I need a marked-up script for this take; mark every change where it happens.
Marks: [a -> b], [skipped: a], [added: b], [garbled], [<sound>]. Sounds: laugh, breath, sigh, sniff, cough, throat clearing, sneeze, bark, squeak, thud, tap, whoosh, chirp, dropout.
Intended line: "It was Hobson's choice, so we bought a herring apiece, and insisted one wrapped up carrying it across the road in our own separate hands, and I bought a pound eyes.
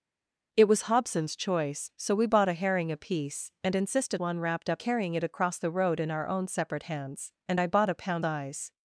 "It was Hobson's choice, so we bought a herring apiece, and insisted one wrapped up carrying it across the road in our own separate hands, and I bought a pound eyes.